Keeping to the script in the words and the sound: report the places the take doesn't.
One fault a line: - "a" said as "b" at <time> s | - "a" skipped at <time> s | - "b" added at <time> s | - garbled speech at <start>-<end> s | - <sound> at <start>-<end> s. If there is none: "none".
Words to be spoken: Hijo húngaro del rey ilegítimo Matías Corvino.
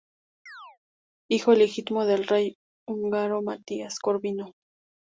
- chirp at 0.5-0.8 s
- "húngaro" said as "ilegítimo" at 1.5 s
- "ilegítimo" said as "húngaro" at 2.9 s